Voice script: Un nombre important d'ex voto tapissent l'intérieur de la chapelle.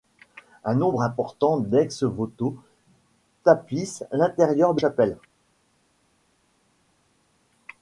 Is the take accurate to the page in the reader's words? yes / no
no